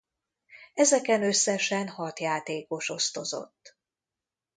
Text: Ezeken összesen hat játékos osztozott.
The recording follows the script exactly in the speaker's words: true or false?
true